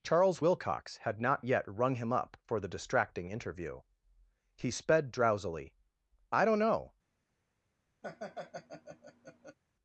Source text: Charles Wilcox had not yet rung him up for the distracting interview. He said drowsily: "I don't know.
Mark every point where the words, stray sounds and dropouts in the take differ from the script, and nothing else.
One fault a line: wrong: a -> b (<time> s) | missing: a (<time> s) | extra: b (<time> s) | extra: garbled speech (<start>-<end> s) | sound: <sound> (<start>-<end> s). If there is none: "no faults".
wrong: said -> sped (4.7 s)
sound: laugh (8.0-9.6 s)